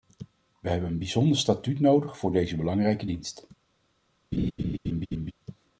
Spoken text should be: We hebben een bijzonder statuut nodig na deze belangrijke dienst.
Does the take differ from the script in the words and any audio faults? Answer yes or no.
yes